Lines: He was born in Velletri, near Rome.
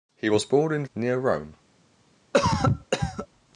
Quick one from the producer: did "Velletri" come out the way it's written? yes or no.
no